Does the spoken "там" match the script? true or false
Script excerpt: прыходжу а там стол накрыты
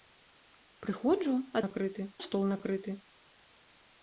false